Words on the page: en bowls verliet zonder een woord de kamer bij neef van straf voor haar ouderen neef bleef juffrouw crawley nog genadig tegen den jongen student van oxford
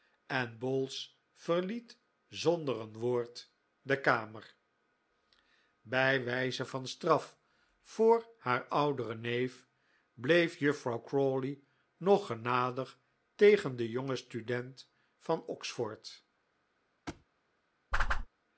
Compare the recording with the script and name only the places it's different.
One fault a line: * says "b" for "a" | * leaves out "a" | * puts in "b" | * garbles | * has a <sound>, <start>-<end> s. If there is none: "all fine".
* says "wijze" for "neef"
* has a thud, 17.1-17.3 s
* has a whoosh, 17.9-18.3 s